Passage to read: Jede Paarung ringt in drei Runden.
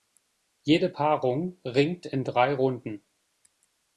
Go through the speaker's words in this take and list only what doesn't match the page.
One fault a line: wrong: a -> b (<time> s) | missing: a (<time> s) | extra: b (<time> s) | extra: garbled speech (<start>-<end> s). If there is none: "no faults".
no faults